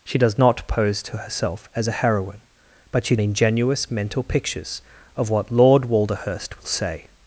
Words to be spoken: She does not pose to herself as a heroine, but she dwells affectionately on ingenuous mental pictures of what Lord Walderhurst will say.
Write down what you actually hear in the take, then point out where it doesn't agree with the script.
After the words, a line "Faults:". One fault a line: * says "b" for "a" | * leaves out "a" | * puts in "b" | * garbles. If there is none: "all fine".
She does not pose to herself as a heroine, but she ingenuous mental pictures of what Lord Walderhurst will say.
Faults:
* leaves out "dwells affectionately on"